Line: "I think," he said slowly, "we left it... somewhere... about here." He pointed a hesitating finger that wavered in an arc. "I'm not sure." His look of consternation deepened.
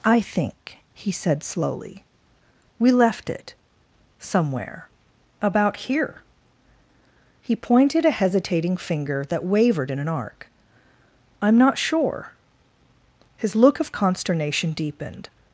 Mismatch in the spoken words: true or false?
false